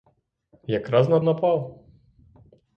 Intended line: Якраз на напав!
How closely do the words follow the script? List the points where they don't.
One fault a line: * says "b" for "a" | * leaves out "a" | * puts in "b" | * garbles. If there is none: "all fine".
all fine